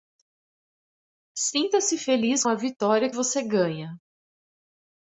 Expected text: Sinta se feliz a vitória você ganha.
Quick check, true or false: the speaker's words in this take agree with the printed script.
true